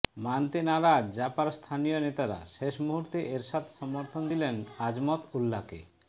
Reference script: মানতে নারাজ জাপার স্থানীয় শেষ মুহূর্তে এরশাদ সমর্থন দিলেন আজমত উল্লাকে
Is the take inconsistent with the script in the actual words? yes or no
yes